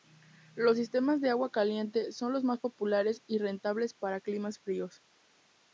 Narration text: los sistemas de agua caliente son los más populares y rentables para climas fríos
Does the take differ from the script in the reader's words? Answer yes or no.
no